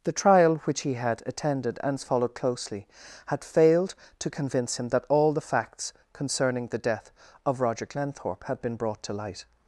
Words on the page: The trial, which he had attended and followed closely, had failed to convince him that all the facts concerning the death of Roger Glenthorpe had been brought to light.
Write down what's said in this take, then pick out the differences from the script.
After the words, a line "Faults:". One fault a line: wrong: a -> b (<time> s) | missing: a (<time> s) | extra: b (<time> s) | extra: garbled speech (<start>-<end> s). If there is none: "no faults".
The trial, which he had attended and followed closely, had failed to convince him that all the facts concerning the death of Roger Glenthorpe had been brought to light.
Faults:
no faults